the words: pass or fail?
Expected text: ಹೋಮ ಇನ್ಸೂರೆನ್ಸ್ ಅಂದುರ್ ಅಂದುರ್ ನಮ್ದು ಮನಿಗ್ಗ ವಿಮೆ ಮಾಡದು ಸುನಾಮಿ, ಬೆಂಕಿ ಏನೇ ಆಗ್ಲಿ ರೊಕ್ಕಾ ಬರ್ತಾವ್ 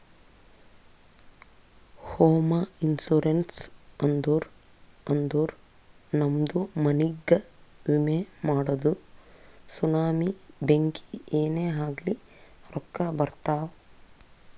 pass